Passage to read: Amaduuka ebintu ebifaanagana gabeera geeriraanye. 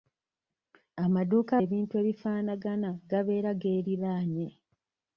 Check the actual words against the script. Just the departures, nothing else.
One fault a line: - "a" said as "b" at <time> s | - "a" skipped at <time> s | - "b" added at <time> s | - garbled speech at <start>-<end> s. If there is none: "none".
none